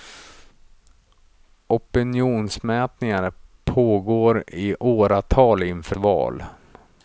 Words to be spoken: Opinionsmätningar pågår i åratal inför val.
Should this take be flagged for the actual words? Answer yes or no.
no